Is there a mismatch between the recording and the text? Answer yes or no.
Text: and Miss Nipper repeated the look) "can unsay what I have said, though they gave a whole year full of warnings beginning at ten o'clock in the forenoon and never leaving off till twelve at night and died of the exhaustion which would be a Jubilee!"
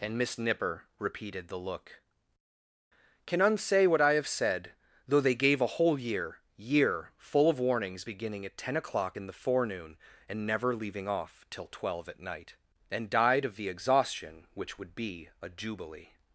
yes